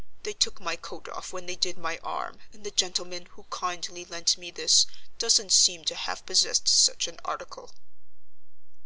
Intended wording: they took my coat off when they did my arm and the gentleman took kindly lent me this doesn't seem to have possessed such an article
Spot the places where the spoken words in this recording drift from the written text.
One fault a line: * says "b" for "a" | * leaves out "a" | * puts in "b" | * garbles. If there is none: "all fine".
* says "who" for "took"